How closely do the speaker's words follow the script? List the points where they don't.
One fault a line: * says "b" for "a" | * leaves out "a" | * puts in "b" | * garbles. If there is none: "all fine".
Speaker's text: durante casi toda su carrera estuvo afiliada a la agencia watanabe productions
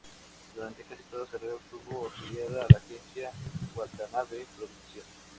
* leaves out "su"